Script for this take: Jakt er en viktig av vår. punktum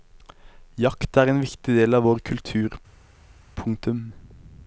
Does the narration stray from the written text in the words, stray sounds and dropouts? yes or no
yes